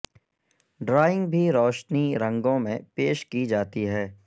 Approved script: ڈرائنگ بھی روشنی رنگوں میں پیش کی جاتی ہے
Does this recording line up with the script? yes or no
yes